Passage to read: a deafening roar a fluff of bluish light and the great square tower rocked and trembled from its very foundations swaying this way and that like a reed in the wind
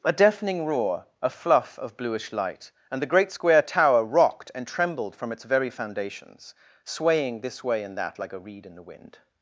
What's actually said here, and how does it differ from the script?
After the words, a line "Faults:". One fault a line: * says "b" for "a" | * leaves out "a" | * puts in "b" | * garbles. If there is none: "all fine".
a deafening roar a fluff of bluish light and the great square tower rocked and trembled from its very foundations swaying this way and that like a reed in the wind
Faults:
all fine